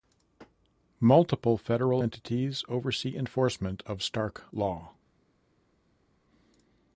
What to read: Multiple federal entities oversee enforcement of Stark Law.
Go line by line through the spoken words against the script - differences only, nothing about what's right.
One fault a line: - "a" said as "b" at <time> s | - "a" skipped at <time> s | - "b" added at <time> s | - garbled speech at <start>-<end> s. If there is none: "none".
none